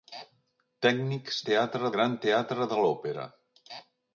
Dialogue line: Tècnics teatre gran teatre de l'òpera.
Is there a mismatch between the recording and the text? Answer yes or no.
no